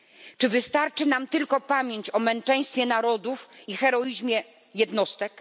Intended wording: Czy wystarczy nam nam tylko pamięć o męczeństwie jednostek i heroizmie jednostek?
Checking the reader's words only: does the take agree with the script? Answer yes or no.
no